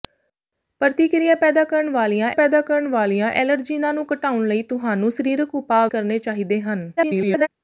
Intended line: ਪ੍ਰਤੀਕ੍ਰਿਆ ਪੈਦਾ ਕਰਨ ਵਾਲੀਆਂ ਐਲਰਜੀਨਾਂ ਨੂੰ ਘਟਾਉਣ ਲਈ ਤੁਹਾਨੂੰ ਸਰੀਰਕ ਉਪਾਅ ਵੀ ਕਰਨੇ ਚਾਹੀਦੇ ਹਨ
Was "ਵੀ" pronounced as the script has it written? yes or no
no